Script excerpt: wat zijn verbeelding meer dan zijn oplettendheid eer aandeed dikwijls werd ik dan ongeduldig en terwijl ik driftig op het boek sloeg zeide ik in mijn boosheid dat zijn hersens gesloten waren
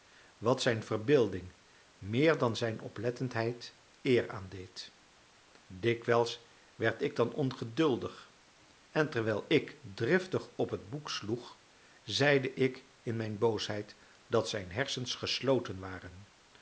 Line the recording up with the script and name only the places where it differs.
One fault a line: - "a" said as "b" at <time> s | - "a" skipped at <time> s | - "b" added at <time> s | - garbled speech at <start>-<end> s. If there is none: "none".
none